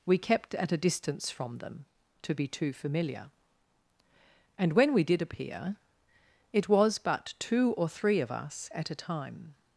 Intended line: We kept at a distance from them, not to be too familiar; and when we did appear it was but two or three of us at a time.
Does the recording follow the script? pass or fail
fail